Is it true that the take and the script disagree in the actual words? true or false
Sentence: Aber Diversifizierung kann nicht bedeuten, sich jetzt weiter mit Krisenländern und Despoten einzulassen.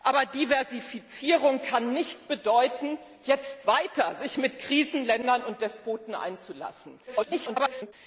true